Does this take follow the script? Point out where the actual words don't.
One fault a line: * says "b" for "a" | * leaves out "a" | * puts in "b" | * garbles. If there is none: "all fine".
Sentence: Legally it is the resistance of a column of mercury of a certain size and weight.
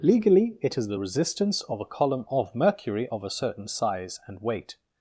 all fine